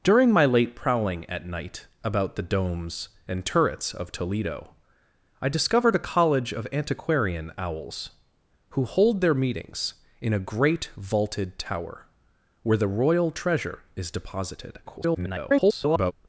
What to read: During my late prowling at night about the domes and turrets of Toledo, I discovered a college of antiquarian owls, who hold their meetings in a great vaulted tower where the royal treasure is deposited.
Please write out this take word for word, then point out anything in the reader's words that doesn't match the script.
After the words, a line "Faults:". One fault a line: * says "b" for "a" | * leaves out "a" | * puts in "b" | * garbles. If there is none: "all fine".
During my late prowling at night about the domes and turrets of Toledo, I discovered a college of antiquarian owls, who hold their meetings in a great vaulted tower where the royal treasure is deposited. [garbled]
Faults:
* garbles